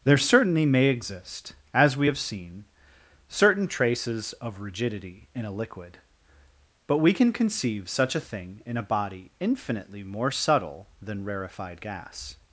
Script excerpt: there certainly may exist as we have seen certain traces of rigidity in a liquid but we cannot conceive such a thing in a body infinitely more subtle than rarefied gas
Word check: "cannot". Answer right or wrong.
wrong